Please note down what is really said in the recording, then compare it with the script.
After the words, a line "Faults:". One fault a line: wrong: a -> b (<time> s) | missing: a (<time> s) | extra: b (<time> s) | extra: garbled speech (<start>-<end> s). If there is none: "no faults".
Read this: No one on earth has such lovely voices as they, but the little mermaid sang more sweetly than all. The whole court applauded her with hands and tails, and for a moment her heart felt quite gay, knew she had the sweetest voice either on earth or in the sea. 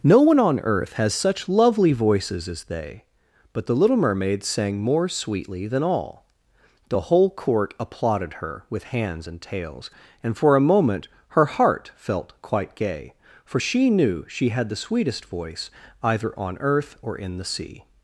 No one on earth has such lovely voices as they, but the little mermaid sang more sweetly than all. The whole court applauded her with hands and tails, and for a moment her heart felt quite gay, for she knew she had the sweetest voice either on earth or in the sea.
Faults:
extra: for she (13.4 s)